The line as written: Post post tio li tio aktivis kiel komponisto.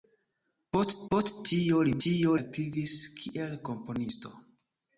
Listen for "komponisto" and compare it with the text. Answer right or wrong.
right